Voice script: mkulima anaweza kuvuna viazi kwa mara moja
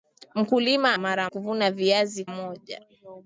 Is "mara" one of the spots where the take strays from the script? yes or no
yes